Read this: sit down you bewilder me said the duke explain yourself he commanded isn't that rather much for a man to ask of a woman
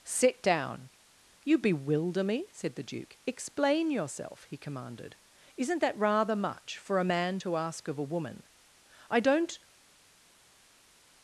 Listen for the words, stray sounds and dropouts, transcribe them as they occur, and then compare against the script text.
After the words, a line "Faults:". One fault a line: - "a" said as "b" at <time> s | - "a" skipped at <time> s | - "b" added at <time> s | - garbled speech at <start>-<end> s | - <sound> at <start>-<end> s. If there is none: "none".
sit down you bewilder me said the duke explain yourself he commanded isn't that rather much for a man to ask of a woman i don't
Faults:
- "i don't" added at 9.1 s